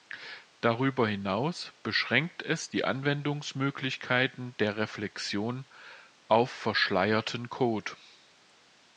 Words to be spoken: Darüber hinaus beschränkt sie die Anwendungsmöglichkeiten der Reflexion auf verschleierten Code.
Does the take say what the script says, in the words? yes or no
no